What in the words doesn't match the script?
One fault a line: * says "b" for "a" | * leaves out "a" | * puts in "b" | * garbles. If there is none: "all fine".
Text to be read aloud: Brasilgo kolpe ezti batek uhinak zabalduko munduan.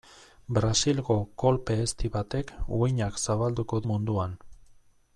all fine